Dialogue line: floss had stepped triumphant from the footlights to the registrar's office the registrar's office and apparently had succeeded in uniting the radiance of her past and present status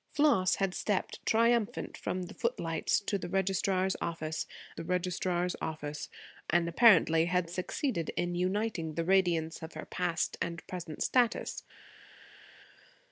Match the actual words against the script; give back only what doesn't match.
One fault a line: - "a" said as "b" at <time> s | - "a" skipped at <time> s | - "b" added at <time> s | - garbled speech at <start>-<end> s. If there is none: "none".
none